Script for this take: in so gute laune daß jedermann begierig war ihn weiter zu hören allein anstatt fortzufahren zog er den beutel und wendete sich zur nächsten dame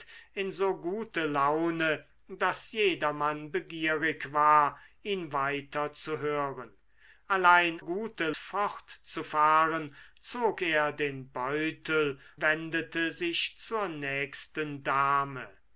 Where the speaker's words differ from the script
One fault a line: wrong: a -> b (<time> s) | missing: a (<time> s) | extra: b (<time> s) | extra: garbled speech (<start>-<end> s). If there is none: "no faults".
wrong: anstatt -> gute (7.8 s)
missing: und (12.2 s)